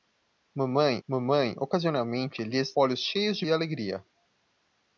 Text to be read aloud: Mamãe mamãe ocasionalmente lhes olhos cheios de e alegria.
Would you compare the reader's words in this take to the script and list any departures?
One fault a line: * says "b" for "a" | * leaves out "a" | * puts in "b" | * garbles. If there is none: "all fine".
all fine